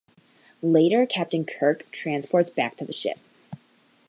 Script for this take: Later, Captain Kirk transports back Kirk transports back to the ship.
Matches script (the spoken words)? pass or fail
fail